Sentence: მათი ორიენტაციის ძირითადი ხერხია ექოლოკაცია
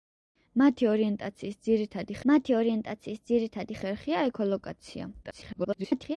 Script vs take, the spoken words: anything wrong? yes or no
yes